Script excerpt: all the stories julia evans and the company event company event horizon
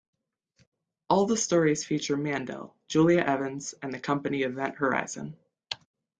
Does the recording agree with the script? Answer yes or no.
no